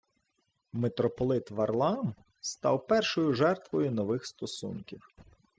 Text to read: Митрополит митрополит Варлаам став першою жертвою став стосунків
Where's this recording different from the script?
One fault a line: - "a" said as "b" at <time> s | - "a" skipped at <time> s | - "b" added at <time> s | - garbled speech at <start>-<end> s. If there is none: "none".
- "митрополит" skipped at 1.5 s
- "став" said as "нових" at 3.9 s